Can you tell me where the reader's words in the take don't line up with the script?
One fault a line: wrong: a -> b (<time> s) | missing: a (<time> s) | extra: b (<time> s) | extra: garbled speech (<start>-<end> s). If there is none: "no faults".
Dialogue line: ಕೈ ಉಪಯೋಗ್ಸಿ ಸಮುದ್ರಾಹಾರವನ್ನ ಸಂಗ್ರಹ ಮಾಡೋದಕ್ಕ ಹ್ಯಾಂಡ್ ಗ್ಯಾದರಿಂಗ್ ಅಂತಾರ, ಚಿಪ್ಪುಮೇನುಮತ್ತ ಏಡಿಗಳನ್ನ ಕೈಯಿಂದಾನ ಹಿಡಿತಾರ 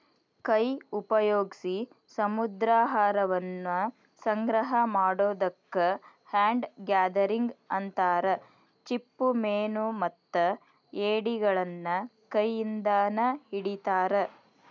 no faults